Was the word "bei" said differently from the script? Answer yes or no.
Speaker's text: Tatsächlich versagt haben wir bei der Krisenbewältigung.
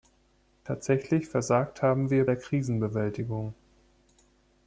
yes